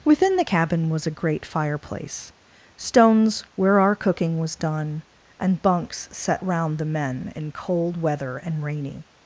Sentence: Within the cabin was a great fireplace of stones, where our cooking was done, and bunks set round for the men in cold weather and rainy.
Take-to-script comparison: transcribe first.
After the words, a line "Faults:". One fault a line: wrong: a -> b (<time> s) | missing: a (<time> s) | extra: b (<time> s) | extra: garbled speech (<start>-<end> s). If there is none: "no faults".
Within the cabin was a great fireplace stones, where our cooking was done, and bunks set round the men in cold weather and rainy.
Faults:
missing: of (2.3 s)
missing: for (6.8 s)